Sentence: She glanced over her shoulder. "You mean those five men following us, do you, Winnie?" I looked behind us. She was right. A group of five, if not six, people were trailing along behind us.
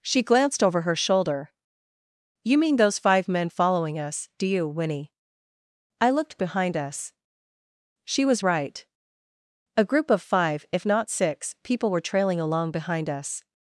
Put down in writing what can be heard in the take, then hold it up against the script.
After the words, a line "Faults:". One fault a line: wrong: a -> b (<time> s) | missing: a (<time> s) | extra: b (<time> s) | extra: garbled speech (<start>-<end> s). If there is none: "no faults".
She glanced over her shoulder. "You mean those five men following us, do you, Winnie?" I looked behind us. She was right. A group of five, if not six, people were trailing along behind us.
Faults:
no faults